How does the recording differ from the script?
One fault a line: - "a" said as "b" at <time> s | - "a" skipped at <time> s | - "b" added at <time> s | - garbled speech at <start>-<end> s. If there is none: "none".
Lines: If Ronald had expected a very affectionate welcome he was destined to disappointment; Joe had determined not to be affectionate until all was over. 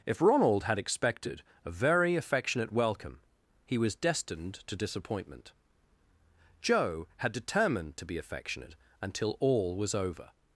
- "not" skipped at 8.0 s